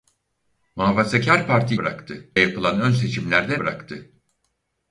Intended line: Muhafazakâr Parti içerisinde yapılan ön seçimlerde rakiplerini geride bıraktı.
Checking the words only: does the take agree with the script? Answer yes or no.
no